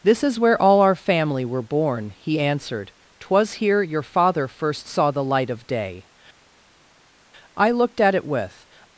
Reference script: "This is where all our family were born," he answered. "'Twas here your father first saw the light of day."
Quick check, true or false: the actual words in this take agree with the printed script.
false